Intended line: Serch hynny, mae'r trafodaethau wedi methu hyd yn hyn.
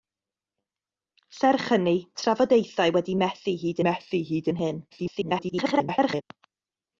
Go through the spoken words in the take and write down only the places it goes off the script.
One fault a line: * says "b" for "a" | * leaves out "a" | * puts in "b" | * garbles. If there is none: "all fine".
* leaves out "mae'r"
* puts in "methu hyd"
* garbles